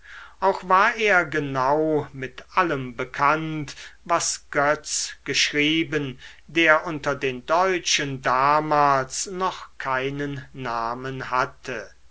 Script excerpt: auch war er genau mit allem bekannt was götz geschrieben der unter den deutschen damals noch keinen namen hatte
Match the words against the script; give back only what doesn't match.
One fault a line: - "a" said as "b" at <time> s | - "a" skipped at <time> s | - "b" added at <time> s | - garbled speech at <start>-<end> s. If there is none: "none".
none